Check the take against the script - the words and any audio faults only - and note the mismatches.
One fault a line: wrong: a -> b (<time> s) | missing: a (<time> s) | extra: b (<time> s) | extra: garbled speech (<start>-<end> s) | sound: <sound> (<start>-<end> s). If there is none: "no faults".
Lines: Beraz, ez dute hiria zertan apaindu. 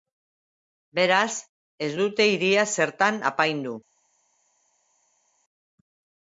no faults